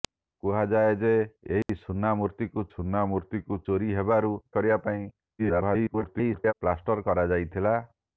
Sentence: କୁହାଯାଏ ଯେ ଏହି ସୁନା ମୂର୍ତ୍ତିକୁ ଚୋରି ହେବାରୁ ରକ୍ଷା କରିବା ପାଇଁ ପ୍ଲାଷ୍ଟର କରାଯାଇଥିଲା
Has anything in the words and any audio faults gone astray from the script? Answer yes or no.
yes